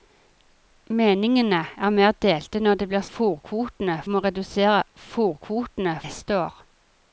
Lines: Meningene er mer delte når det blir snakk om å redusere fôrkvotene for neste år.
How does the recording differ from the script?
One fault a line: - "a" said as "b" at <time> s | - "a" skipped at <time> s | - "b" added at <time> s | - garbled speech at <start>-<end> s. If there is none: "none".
- "snakk" said as "fôrkvotene" at 3.1 s
- "for" skipped at 6.0 s